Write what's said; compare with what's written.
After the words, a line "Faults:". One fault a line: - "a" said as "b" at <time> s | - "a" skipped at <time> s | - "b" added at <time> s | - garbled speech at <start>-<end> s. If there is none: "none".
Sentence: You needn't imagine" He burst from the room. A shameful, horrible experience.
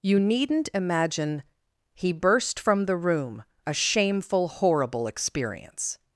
You needn't imagine" He burst from the room. A shameful, horrible experience.
Faults:
none